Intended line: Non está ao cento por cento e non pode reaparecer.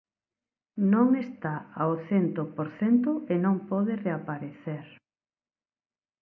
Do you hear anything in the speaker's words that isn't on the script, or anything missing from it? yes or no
no